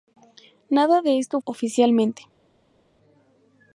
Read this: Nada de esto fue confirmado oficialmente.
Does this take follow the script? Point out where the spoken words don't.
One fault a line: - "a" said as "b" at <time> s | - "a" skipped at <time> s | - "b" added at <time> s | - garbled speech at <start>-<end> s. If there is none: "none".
- "fue confirmado" skipped at 1.4 s